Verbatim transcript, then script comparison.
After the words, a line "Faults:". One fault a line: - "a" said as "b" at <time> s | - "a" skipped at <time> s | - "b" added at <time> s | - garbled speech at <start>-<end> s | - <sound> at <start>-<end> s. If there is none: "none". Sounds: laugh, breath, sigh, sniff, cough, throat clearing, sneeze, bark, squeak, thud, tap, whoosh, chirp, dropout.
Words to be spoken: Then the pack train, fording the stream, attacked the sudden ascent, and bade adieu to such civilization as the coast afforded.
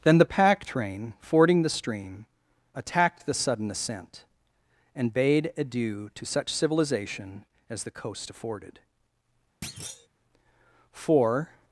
Then the pack train, fording the stream, attacked the sudden ascent, and bade adieu to such civilization as the coast afforded. For
Faults:
- thud at 9.6-10.1 s
- "For" added at 10.9 s